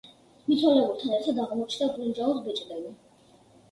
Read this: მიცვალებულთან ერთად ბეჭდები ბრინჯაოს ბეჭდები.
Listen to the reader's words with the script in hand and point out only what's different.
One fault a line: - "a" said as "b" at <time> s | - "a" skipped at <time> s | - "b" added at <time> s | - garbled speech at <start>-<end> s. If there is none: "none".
- "ბეჭდები" said as "აღმოჩნდა" at 1.5 s